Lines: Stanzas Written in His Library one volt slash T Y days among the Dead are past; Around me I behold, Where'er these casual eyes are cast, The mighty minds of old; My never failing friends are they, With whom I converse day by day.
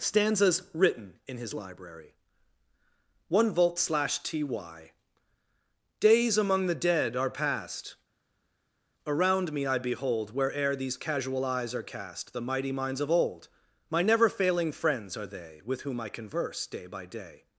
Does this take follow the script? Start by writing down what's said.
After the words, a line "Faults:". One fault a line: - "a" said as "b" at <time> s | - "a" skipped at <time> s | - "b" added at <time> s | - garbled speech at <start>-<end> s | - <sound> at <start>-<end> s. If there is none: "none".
Stanzas Written in His Library one volt slash T Y days among the Dead are past; Around me I behold, Where'er these casual eyes are cast, The mighty minds of old; My never failing friends are they, With whom I converse day by day.
Faults:
none